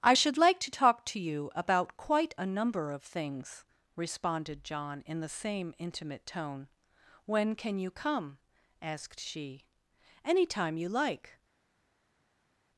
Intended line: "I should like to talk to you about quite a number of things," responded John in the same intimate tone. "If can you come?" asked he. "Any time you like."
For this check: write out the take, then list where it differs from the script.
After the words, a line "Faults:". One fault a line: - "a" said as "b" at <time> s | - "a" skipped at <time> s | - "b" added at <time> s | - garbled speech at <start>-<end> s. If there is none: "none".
"I should like to talk to you about quite a number of things," responded John in the same intimate tone. "When can you come?" asked she. "Any time you like."
Faults:
- "If" said as "When" at 7.2 s
- "he" said as "she" at 9.2 s